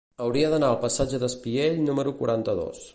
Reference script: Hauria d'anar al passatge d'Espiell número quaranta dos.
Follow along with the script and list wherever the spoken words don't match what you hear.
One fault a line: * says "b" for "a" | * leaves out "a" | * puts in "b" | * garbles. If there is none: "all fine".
all fine